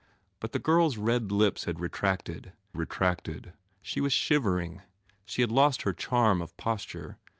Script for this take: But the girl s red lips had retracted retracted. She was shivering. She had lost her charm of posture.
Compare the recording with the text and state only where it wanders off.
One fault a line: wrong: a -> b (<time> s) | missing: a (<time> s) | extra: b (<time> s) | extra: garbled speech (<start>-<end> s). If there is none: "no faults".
no faults